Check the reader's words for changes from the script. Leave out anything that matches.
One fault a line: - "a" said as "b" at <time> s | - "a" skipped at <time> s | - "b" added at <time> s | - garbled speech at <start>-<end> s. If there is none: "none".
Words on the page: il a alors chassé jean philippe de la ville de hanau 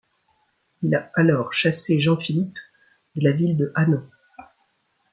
none